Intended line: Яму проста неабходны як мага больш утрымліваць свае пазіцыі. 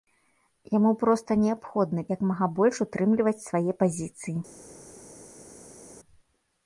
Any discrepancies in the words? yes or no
no